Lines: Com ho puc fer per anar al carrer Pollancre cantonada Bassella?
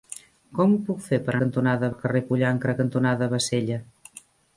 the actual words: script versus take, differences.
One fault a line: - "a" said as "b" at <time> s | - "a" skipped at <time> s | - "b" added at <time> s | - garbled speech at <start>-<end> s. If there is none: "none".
- "anar" said as "cantonada" at 1.4 s